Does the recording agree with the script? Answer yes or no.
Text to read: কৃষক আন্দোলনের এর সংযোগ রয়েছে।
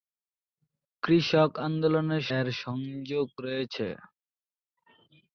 yes